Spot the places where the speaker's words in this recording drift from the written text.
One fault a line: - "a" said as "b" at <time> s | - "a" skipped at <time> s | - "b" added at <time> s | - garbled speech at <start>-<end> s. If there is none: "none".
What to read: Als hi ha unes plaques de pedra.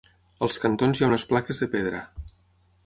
- "cantons" added at 0.6 s